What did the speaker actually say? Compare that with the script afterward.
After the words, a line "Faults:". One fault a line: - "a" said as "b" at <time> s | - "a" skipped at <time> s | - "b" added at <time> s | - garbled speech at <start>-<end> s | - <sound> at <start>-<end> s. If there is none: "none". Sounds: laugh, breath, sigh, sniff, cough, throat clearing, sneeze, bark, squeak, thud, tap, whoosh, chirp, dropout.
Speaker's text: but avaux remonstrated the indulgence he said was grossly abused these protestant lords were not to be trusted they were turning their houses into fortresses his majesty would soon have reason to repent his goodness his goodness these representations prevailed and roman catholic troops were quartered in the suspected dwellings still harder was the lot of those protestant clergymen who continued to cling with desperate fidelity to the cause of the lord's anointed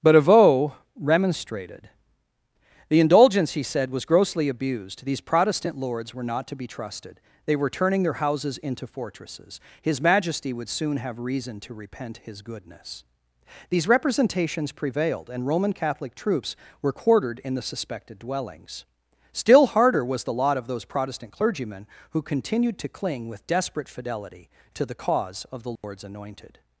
but avaux remonstrated the indulgence he said was grossly abused these protestant lords were not to be trusted they were turning their houses into fortresses his majesty would soon have reason to repent his goodness these representations prevailed and roman catholic troops were quartered in the suspected dwellings still harder was the lot of those protestant clergymen who continued to cling with desperate fidelity to the cause of the lord's anointed
Faults:
- "his goodness" skipped at 13.0 s
- dropout at 25.8-25.8 s